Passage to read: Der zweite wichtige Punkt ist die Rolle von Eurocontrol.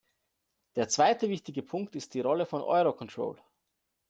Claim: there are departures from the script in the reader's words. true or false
false